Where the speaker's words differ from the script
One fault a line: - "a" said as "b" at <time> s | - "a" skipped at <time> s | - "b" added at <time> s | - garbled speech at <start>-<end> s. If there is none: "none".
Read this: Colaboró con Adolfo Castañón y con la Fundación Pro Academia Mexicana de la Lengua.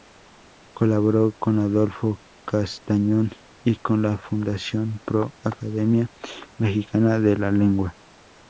none